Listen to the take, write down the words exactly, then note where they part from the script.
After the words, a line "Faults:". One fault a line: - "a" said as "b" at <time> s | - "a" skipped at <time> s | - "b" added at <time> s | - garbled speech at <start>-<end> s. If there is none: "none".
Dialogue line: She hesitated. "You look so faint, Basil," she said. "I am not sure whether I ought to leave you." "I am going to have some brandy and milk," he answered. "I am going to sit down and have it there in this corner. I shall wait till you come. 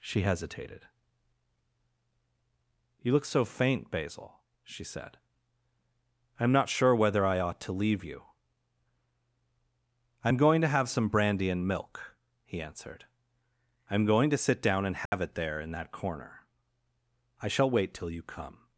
She hesitated. "You look so faint, Basil," she said. "I am not sure whether I ought to leave you." "I am going to have some brandy and milk," he answered. "I am going to sit down and have it there in that corner. I shall wait till you come.
Faults:
- "this" said as "that" at 15.7 s